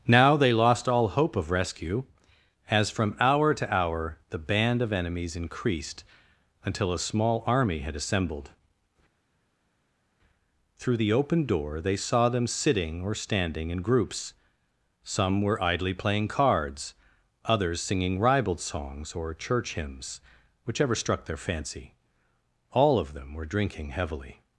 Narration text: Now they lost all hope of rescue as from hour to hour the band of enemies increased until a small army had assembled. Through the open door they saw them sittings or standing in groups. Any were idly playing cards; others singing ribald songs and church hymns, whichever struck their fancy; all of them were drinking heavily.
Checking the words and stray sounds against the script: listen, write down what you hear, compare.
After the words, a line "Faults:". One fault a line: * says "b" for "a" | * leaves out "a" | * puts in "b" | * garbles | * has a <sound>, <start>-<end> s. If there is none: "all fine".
Now they lost all hope of rescue as from hour to hour the band of enemies increased until a small army had assembled. Through the open door they saw them sitting or standing in groups. Some were idly playing cards; others singing ribald songs or church hymns, whichever struck their fancy; all of them were drinking heavily.
Faults:
* says "sitting" for "sittings"
* says "Some" for "Any"
* says "or" for "and"